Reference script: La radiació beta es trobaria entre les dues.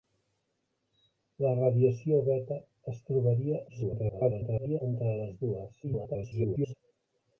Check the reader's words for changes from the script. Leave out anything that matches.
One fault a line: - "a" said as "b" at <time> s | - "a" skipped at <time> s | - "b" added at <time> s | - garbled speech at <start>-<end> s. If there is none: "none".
- garbled speech at 3.7-4.8 s
- garbled speech at 5.8-6.7 s